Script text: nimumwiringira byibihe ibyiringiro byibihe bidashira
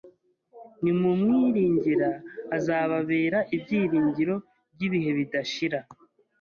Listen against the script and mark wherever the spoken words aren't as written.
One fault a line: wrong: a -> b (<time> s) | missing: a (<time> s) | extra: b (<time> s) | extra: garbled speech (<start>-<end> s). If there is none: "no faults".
wrong: byibihe -> azababera (2.6 s)